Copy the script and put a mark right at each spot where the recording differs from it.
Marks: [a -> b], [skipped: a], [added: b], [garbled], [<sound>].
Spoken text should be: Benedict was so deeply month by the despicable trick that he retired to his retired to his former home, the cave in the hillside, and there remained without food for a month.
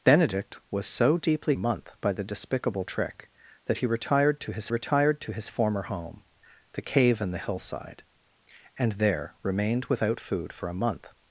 Benedict was so deeply month by the despicable trick that he retired to his retired to his former home, the cave in the hillside, and there remained without food for a month.